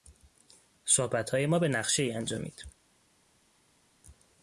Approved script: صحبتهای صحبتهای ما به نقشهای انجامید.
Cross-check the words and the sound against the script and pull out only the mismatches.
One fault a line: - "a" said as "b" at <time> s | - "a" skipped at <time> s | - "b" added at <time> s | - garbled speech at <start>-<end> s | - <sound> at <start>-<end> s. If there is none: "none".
- "صحبتهای" skipped at 1.4 s